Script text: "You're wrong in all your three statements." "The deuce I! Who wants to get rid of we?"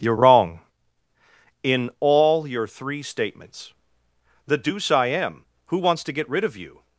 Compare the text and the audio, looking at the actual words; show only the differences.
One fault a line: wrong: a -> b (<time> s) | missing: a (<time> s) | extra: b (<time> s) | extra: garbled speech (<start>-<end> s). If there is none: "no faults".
extra: am (5.1 s)
wrong: we -> you (6.6 s)